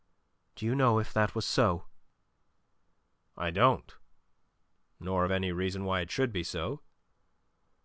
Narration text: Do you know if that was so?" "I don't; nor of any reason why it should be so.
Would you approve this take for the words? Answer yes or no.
yes